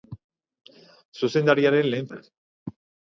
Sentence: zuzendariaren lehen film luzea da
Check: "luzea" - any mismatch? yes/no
yes